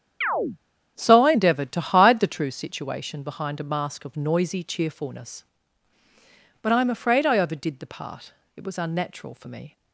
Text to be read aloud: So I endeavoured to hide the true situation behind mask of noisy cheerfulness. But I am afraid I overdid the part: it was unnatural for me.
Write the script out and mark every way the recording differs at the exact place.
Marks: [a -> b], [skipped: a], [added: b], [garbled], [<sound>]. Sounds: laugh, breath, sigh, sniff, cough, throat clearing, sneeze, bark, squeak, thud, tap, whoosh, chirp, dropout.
[chirp] So I endeavoured to hide the true situation behind [added: a] mask of noisy cheerfulness. But I am afraid I overdid the part: it was unnatural for me.